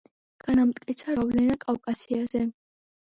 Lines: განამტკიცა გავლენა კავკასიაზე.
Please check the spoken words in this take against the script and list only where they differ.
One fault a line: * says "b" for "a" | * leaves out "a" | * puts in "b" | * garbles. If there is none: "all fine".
all fine